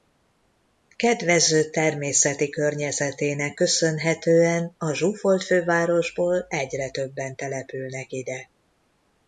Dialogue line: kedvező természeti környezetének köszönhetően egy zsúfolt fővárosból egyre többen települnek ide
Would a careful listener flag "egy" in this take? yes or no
yes